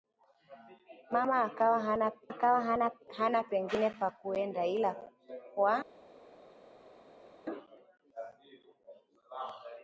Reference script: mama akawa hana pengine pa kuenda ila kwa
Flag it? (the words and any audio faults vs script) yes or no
yes